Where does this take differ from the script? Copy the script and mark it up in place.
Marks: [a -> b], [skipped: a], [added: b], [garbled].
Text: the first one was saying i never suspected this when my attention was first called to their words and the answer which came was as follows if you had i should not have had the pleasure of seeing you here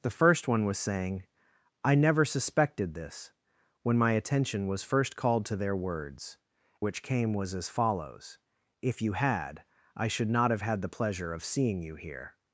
the first one was saying i never suspected this when my attention was first called to their words [skipped: and the answer] which came was as follows if you had i should not have had the pleasure of seeing you here